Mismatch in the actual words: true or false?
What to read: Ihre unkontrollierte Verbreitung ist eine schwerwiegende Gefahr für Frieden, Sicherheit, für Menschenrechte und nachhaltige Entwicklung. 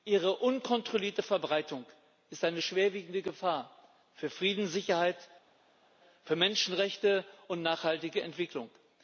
false